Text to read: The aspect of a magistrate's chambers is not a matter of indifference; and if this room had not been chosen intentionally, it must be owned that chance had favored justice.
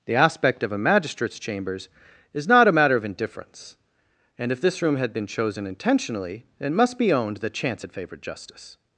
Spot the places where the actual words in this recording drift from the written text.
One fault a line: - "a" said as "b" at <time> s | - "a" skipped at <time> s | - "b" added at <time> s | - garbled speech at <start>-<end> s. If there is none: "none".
- "not" skipped at 5.1 s